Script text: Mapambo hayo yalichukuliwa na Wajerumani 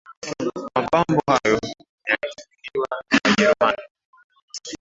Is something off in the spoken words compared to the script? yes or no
no